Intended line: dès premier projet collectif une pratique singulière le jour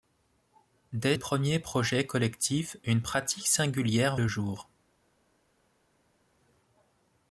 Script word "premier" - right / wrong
right